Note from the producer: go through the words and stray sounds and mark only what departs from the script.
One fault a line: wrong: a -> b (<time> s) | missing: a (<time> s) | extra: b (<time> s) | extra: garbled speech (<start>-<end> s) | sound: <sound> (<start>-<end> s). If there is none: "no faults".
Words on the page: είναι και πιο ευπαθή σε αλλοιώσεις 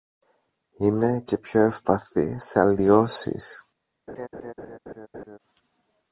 sound: laugh (4.1-5.4 s)